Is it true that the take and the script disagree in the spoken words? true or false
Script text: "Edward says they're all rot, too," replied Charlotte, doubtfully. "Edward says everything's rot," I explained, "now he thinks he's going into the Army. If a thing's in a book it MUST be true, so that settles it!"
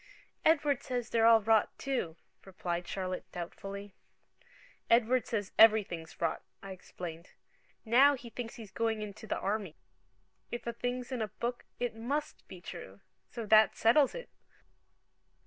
false